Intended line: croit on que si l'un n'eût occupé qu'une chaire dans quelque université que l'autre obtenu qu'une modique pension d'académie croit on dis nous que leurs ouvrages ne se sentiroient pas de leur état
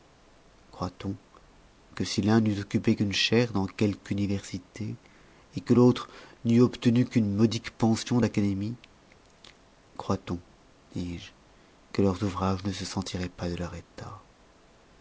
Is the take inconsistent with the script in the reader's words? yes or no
yes